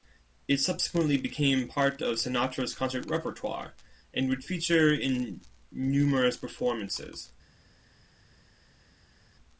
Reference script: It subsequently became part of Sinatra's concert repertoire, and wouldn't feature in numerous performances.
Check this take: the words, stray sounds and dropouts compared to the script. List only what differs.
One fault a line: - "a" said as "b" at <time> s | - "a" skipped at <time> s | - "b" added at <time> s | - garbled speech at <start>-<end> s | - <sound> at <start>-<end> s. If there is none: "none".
- "wouldn't" said as "would" at 4.3 s